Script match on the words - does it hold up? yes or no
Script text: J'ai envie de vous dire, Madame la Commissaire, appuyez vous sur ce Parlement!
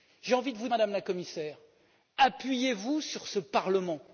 no